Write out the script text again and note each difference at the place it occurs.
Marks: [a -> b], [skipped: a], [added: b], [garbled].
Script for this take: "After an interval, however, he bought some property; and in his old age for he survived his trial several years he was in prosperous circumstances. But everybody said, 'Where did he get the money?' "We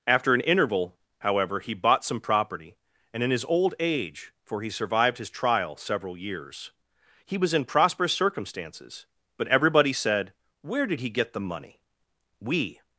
"After an interval, however, he bought some property; and in his old age for he survived his trial several years he was in prosperous circumstances. But everybody said, 'Where did he get the money?' "We